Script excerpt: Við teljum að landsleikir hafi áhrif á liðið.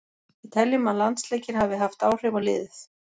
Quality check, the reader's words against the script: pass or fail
fail